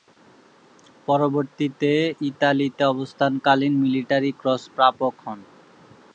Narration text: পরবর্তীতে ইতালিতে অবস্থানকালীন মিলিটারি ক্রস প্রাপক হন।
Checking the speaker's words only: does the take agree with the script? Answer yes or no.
yes